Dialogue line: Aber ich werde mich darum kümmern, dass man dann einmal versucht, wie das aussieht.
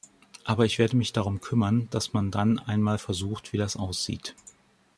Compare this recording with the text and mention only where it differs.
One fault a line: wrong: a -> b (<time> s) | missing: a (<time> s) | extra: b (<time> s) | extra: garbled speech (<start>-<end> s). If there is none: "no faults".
no faults